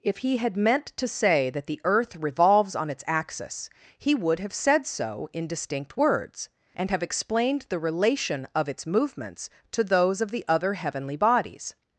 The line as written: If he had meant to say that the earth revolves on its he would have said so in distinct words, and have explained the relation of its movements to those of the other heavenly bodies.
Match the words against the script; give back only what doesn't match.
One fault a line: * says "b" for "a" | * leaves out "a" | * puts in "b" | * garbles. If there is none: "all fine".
* puts in "axis"